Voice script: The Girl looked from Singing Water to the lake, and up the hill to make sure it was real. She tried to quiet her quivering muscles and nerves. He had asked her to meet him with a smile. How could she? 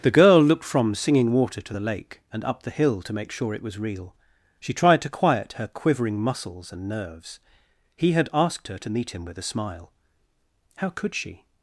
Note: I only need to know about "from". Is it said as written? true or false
true